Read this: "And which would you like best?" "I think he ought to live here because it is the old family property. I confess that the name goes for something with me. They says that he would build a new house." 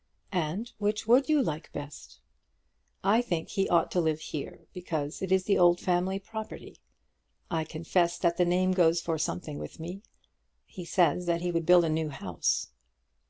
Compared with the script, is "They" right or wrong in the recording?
wrong